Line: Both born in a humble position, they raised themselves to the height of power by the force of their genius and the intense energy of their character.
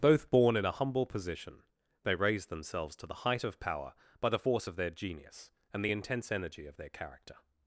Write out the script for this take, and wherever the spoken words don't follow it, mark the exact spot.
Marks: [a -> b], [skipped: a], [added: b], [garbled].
Both born in a humble position, they raised themselves to the height of power by the force of their genius and the intense energy of their character.